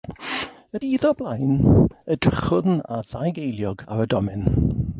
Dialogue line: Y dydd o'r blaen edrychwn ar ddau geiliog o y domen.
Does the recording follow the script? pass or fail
fail